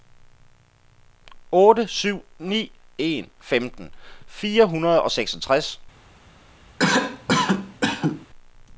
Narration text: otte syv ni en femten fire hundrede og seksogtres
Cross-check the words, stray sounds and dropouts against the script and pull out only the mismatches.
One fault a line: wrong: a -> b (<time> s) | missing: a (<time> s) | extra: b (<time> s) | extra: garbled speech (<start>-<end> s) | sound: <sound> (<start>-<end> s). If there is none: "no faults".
sound: cough (6.8-8.3 s)